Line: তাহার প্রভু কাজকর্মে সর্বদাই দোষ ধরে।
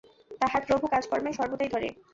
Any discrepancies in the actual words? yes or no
yes